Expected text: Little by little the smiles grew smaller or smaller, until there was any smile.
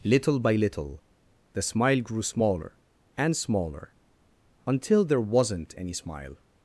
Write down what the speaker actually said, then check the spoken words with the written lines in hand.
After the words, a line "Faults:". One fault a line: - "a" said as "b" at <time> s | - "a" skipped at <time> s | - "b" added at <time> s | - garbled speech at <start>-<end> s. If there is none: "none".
Little by little the smile grew smaller and smaller, until there wasn't any smile.
Faults:
- "smiles" said as "smile" at 1.6 s
- "or" said as "and" at 3.2 s
- "was" said as "wasn't" at 5.2 s